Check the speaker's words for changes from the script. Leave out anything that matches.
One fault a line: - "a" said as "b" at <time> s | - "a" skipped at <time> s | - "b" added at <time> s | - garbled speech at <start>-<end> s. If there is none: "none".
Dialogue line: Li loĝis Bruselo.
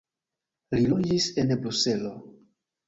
- "en" added at 1.4 s